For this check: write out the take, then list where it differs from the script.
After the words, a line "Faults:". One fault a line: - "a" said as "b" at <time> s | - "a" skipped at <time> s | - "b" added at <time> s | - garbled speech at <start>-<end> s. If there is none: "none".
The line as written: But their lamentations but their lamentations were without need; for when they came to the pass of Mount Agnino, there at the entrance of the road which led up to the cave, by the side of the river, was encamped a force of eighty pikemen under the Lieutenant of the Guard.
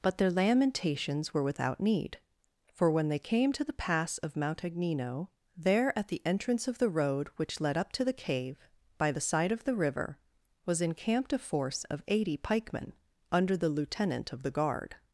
But their lamentations were without need; for when they came to the pass of Mount Agnino, there at the entrance of the road which led up to the cave, by the side of the river, was encamped a force of eighty pikemen under the Lieutenant of the Guard.
Faults:
- "but their lamentations" skipped at 1.3 s